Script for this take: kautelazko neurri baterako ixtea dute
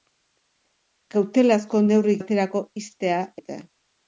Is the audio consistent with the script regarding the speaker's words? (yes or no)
yes